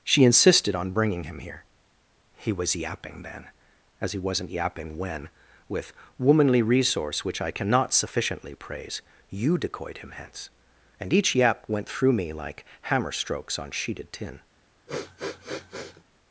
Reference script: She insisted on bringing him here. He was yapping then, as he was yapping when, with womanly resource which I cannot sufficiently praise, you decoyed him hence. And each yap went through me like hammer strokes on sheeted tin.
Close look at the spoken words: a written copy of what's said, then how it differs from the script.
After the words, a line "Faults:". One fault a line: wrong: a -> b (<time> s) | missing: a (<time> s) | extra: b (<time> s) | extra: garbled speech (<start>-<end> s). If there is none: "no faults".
She insisted on bringing him here. He was yapping then, as he wasn't yapping when, with womanly resource which I cannot sufficiently praise, you decoyed him hence. And each yap went through me like hammer strokes on sheeted tin.
Faults:
wrong: was -> wasn't (4.2 s)